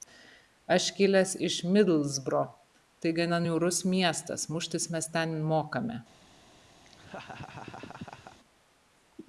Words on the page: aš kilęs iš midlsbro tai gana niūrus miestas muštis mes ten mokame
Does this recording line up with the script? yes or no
yes